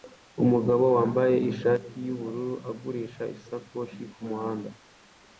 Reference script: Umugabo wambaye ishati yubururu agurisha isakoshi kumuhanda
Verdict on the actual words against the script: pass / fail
pass